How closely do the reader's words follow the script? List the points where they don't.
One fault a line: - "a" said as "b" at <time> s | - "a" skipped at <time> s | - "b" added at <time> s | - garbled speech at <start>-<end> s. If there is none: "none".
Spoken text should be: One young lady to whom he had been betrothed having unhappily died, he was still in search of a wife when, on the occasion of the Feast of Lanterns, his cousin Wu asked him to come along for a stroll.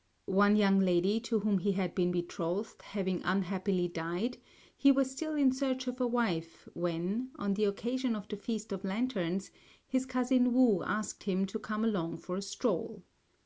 none